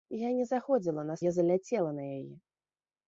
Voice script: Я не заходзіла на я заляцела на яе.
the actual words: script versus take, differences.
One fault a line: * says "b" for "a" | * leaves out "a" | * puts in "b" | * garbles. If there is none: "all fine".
all fine